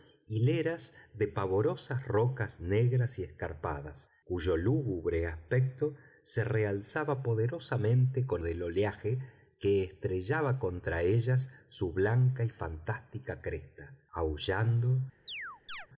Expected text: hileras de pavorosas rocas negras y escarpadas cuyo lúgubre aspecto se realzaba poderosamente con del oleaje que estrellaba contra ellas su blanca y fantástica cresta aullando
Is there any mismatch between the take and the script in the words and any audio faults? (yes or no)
yes